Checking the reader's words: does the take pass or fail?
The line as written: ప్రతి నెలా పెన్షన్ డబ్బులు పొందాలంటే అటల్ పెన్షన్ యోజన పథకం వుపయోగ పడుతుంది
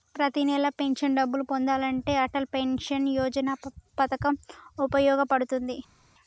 pass